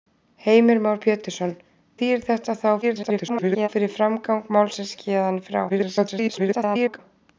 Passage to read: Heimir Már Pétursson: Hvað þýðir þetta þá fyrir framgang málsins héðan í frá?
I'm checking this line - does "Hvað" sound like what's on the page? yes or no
no